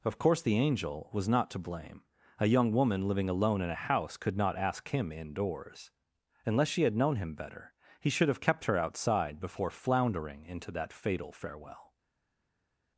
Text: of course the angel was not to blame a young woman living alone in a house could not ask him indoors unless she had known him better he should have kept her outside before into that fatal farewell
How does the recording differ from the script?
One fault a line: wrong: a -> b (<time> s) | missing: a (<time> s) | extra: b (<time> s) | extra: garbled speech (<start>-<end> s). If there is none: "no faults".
extra: floundering (9.7 s)